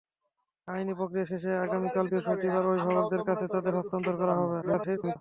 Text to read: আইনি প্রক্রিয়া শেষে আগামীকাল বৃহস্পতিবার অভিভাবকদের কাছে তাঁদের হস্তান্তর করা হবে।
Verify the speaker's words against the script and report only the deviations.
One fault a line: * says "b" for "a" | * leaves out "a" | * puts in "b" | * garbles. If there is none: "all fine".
* garbles